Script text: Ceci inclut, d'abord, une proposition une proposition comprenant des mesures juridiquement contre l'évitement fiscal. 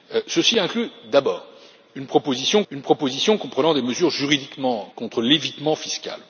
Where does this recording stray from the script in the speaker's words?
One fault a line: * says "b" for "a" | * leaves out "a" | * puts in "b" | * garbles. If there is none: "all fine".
all fine